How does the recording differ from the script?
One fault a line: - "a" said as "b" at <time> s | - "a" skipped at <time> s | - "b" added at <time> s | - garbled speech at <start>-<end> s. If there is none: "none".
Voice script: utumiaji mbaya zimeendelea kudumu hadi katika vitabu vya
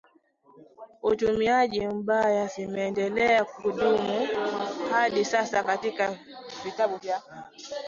- "sasa" added at 5.2 s